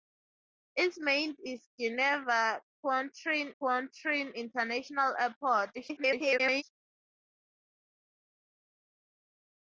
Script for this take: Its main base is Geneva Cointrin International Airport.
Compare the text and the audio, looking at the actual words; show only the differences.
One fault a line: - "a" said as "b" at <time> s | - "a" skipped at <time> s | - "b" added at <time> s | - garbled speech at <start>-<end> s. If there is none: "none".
- "base" skipped at 1.4 s
- "Cointrin" added at 3.6 s
- garbled speech at 5.7-6.6 s